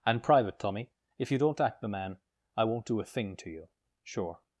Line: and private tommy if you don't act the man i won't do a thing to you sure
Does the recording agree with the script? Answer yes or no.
yes